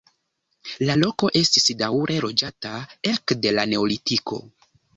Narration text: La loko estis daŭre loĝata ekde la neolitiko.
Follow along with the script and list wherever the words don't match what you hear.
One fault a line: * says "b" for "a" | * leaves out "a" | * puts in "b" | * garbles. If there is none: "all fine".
all fine